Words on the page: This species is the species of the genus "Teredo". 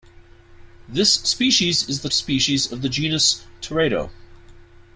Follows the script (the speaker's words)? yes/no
yes